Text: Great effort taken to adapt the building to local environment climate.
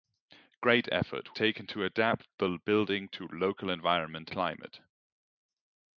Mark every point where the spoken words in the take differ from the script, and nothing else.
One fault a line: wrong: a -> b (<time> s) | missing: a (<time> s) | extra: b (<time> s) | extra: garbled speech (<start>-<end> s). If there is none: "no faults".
no faults